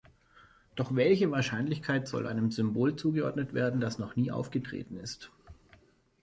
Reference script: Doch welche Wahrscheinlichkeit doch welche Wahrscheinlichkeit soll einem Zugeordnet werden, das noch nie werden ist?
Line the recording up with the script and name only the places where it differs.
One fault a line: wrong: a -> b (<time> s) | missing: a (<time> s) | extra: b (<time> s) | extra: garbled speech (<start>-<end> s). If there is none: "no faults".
missing: doch welche Wahrscheinlichkeit (2.1 s)
extra: Symbol (2.5 s)
wrong: werden -> aufgetreten (4.3 s)